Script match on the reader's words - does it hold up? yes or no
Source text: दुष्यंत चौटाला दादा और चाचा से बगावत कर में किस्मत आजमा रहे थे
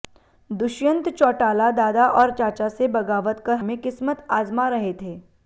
yes